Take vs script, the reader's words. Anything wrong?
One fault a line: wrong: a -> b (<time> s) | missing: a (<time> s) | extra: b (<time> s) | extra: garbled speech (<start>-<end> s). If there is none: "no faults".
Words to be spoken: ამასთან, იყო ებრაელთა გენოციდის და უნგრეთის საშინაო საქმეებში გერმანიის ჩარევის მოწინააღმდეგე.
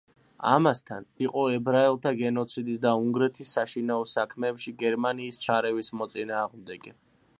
no faults